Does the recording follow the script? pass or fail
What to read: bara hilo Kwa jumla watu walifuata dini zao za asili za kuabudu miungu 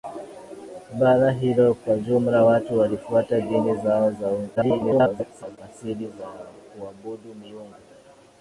fail